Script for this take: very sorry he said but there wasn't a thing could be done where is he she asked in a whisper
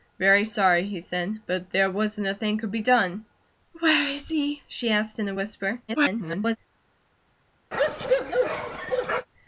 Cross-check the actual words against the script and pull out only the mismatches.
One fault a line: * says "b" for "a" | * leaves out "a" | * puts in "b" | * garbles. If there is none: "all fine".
* garbles